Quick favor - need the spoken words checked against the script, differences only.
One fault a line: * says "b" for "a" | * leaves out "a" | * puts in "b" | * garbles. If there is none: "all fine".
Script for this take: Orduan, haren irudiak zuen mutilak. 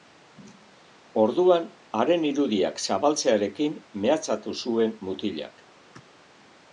* puts in "zabaltzearekin mehatxatu"